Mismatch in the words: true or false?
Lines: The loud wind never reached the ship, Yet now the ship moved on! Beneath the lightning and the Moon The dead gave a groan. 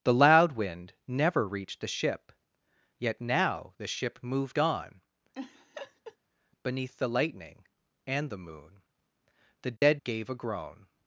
false